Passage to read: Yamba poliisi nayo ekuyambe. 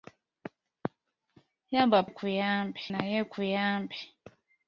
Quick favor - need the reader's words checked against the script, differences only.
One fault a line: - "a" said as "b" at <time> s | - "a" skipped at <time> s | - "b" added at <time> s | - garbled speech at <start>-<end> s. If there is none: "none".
- "poliisi" said as "ekuyambe" at 2.1 s